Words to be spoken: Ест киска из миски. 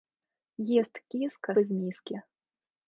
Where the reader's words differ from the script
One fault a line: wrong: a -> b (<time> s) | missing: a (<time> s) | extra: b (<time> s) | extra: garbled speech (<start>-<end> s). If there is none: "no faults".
no faults